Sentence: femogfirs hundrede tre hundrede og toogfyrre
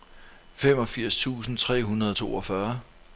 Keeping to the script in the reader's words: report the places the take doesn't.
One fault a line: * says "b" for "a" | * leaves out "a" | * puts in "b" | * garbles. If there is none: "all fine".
* says "tusind" for "hundrede"